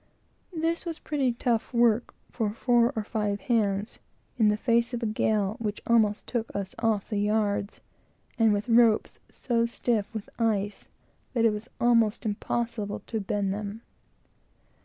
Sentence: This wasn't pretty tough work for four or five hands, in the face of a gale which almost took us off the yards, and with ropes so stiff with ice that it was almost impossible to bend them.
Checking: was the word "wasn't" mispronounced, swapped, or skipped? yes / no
yes